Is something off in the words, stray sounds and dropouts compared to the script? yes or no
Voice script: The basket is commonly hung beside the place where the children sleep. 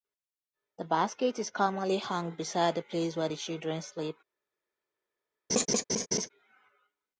yes